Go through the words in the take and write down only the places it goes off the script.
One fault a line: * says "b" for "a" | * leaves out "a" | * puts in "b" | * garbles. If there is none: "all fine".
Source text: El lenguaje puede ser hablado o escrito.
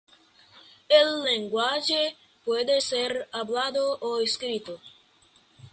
all fine